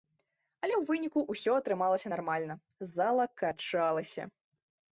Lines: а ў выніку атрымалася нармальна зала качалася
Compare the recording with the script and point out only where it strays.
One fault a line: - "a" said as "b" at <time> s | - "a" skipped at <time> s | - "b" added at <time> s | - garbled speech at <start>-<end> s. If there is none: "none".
- "а" said as "але" at 0.6 s
- "ўсё" added at 1.3 s